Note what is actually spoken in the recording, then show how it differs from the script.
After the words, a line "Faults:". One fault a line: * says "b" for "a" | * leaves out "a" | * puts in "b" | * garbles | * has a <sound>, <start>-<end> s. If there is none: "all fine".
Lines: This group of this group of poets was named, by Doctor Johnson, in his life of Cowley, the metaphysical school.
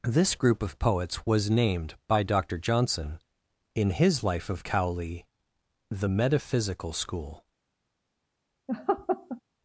This group of poets was named, by Doctor Johnson, in his life of Cowley, the metaphysical school.
Faults:
* leaves out "this group of"
* has a laugh, 8.7-9.4 s